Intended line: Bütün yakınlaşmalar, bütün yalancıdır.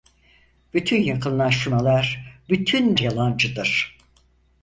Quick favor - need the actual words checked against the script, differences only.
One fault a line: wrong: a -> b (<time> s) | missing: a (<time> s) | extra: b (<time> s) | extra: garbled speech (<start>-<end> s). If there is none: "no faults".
no faults